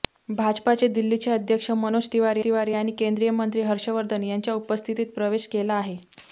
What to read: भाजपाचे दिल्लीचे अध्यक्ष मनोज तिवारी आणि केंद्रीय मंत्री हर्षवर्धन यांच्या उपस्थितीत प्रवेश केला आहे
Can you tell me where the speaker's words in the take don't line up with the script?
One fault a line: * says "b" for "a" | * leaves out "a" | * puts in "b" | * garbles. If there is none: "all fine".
* puts in "तिवारी"